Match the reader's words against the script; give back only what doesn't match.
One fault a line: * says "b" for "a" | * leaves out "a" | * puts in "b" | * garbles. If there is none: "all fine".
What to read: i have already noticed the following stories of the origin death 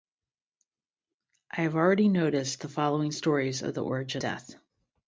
all fine